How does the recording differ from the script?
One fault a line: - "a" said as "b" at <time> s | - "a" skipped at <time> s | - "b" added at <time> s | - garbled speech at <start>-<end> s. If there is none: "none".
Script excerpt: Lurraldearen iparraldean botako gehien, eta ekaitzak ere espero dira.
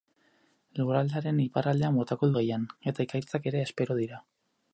none